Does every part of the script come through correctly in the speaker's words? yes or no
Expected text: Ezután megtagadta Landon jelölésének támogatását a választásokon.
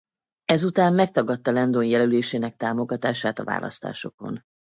yes